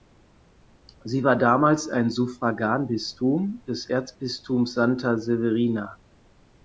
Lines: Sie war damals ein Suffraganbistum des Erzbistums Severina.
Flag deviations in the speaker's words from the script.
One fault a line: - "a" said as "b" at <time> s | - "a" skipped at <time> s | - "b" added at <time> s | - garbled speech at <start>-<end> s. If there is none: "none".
- "Santa" added at 4.8 s